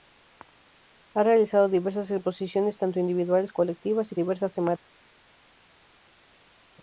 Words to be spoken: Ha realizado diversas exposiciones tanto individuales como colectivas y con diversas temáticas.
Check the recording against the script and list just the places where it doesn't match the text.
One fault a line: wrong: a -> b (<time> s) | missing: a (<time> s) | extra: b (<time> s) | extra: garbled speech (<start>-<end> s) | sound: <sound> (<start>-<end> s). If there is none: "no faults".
missing: como (3.5 s)
missing: con (4.2 s)